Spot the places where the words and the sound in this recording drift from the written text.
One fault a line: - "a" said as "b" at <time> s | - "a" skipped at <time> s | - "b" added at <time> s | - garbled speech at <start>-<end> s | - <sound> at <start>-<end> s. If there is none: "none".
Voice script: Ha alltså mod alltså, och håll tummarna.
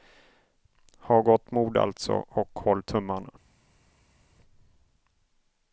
- "alltså" said as "gott" at 1.2 s